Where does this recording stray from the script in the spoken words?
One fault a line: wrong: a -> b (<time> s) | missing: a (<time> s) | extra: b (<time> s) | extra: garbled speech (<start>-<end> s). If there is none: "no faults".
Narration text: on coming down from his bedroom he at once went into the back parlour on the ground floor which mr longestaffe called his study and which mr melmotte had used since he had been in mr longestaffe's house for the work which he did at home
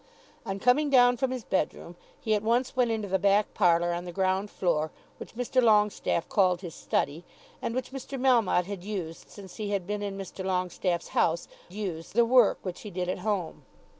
wrong: for -> used (11.7 s)